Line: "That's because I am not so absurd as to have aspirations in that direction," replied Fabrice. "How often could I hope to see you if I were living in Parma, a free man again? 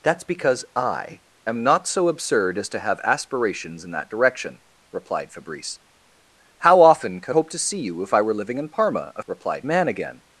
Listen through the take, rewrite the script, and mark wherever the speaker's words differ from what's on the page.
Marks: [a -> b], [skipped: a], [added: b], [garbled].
"That's because I am not so absurd as to have aspirations in that direction," replied Fabrice. "How often could [skipped: I] hope to see you if I were living in Parma, a [free -> replied] man again?